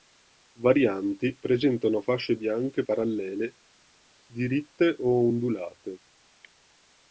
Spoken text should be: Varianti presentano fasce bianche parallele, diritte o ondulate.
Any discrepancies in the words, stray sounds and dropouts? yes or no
no